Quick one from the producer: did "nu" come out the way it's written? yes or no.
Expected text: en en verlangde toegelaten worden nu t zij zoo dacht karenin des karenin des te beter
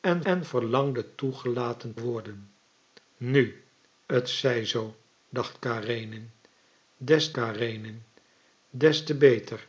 yes